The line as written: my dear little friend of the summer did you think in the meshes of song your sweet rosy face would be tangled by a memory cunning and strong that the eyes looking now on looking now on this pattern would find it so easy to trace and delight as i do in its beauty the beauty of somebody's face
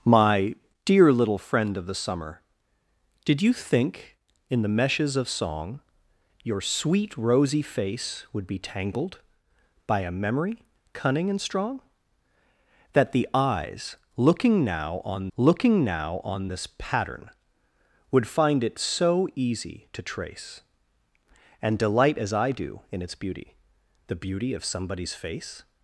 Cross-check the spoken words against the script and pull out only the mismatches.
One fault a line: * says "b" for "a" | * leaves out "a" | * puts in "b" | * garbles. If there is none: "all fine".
all fine